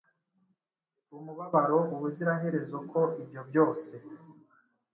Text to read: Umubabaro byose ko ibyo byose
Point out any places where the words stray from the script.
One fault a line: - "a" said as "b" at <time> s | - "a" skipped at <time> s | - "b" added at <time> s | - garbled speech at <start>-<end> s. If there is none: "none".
- "byose" said as "ubuziraherezo" at 1.9 s